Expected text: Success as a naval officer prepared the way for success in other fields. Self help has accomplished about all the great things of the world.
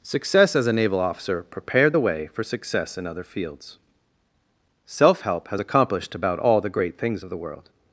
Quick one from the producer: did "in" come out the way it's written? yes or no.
yes